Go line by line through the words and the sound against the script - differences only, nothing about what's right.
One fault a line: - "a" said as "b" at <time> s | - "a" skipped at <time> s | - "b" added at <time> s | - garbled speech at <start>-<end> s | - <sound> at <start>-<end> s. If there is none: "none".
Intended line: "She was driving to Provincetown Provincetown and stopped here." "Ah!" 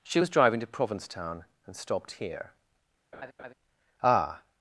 - "Provincetown" skipped at 1.4 s
- laugh at 3.1-3.5 s